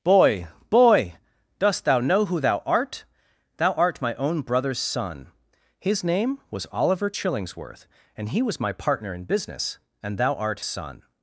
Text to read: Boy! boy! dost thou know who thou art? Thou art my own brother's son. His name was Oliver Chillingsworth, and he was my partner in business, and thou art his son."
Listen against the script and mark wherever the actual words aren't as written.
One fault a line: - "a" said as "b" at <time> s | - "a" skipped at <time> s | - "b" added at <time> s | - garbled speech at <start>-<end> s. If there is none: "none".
- "his" skipped at 10.6 s